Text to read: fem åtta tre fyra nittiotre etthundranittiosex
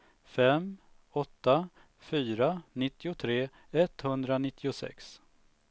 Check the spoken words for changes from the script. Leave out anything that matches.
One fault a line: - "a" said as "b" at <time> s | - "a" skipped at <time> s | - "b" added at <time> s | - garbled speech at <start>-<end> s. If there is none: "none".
- "tre" skipped at 1.7 s